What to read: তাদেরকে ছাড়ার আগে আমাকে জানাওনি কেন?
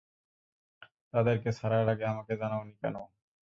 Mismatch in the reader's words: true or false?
false